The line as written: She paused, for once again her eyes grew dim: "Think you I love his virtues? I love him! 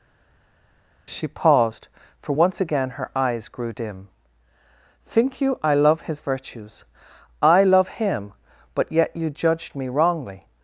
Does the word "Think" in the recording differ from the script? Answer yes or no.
no